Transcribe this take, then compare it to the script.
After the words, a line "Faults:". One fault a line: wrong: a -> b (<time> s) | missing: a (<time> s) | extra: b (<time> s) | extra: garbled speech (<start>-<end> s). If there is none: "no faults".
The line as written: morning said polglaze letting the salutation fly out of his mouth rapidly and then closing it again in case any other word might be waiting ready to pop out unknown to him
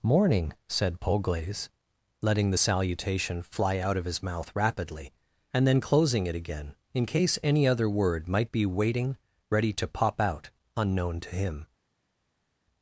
morning said polglaze letting the salutation fly out of his mouth rapidly and then closing it again in case any other word might be waiting ready to pop out unknown to him
Faults:
no faults